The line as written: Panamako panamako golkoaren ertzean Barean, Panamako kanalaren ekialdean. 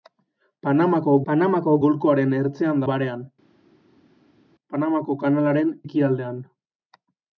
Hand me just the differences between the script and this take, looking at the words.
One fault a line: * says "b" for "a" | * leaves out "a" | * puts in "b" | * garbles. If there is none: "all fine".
all fine